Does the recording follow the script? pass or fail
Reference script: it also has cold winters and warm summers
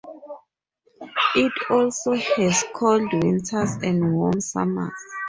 pass